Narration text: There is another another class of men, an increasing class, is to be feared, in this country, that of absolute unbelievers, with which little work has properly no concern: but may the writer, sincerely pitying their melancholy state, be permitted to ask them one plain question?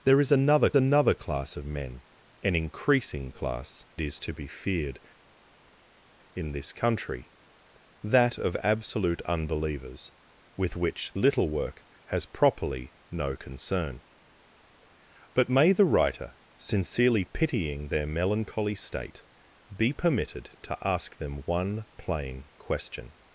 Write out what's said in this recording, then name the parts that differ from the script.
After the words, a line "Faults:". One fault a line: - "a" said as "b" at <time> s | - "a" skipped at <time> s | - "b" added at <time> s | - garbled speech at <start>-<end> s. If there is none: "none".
There is another another class of men, an increasing class, is to be feared, in this country, that of absolute unbelievers, with which little work has properly no concern: but may the writer, sincerely pitying their melancholy state, be permitted to ask them one plain question?
Faults:
none